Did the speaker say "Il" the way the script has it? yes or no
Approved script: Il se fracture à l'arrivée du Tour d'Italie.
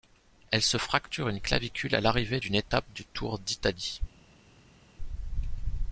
no